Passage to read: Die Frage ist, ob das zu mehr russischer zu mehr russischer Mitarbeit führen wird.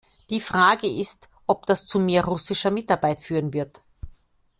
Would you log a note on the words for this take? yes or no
yes